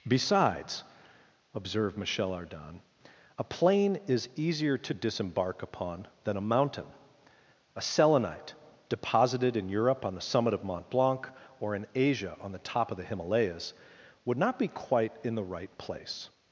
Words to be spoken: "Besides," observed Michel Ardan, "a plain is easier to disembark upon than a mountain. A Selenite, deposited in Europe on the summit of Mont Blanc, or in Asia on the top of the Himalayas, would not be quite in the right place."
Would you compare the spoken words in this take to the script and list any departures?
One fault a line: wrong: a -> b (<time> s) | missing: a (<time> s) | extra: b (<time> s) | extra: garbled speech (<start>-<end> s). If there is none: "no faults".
no faults